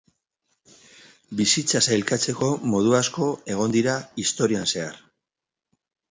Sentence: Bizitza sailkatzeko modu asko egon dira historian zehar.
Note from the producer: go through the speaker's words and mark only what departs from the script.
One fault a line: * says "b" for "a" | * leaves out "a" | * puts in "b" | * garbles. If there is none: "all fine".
all fine